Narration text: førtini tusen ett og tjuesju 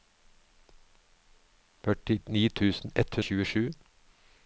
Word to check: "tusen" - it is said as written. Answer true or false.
true